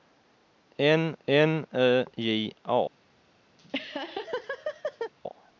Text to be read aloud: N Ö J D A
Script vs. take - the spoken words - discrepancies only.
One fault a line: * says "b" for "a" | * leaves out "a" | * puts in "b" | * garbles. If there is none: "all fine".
* puts in "n"
* leaves out "D"